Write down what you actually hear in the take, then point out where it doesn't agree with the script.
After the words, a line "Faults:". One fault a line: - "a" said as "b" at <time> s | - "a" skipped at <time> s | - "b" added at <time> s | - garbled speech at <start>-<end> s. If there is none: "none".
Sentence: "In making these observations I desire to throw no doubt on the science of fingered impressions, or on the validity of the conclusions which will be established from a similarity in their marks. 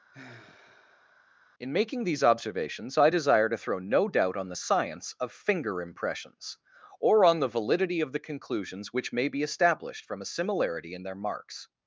"In making these observations I desire to throw no doubt on the science of finger impressions, or on the validity of the conclusions which may be established from a similarity in their marks.
Faults:
- "fingered" said as "finger" at 5.3 s
- "will" said as "may" at 9.1 s